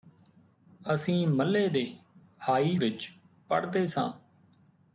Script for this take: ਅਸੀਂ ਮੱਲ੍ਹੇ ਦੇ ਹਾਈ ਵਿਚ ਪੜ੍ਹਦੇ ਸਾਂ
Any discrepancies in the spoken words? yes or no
no